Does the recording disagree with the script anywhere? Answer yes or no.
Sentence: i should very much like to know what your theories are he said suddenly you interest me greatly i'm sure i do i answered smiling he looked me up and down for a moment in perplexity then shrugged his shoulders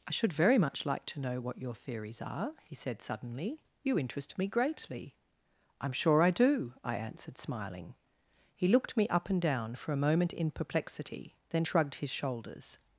no